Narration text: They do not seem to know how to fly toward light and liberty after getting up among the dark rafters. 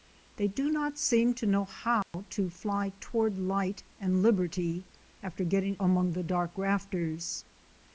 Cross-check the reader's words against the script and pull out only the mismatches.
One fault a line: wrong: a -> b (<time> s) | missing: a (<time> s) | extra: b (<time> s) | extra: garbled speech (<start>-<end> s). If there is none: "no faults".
missing: up (5.8 s)